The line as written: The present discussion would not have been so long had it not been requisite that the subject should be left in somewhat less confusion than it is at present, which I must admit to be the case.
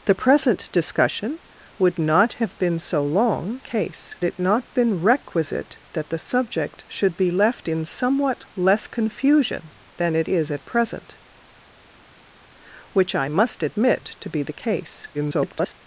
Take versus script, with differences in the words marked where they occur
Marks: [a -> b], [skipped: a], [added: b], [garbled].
The present discussion would not have been so long [had -> case] it not been requisite that the subject should be left in somewhat less confusion than it is at present, which I must admit to be the case. [garbled]